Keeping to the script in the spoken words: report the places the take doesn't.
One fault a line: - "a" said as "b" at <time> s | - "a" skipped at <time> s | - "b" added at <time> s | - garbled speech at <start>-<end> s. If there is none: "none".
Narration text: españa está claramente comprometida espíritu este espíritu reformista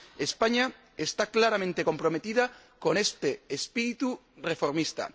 - "espíritu" said as "con" at 2.8 s